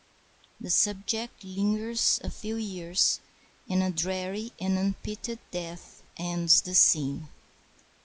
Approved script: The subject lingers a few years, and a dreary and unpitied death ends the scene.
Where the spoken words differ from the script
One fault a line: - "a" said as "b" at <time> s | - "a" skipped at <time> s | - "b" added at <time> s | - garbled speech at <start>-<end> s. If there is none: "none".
none